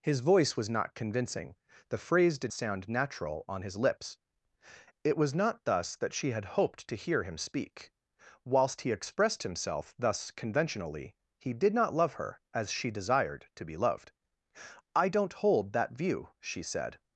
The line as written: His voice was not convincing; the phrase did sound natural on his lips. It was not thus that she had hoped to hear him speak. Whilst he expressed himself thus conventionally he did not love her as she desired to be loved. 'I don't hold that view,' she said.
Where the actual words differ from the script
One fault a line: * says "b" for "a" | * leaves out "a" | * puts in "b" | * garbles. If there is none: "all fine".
all fine